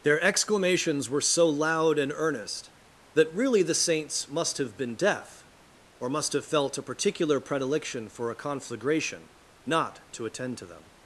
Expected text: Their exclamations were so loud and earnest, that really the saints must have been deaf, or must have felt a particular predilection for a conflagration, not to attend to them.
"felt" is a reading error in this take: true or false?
false